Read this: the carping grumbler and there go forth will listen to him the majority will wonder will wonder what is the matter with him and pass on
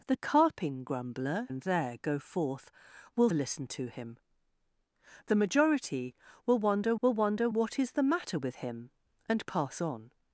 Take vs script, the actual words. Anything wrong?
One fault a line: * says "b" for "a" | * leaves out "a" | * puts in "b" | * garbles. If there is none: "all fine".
all fine